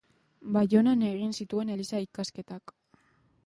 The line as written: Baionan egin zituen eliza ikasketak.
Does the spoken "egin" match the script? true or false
true